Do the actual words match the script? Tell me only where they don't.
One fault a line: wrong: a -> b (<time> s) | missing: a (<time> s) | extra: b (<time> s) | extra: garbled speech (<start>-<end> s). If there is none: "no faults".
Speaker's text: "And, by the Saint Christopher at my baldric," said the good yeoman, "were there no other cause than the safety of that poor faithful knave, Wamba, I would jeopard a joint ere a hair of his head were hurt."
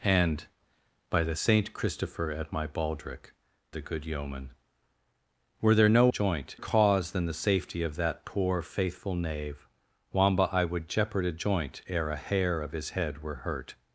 missing: said (3.3 s)
wrong: other -> joint (6.1 s)